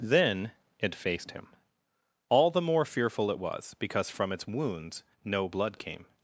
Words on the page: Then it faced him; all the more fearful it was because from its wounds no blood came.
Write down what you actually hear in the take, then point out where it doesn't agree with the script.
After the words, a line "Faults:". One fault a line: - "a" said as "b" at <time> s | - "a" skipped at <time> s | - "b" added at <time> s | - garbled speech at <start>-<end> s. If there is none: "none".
Then it faced him; all the more fearful it was because from its wounds no blood came.
Faults:
none